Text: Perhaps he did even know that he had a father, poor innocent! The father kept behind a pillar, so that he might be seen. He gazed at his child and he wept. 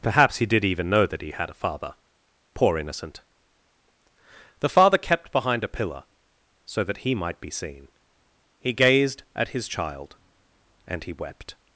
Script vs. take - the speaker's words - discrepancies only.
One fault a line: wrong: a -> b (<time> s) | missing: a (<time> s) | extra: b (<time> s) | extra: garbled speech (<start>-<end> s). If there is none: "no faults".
no faults